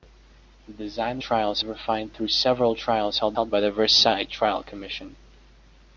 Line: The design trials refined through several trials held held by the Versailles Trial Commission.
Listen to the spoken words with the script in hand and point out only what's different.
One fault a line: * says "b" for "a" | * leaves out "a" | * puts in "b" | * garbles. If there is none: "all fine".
all fine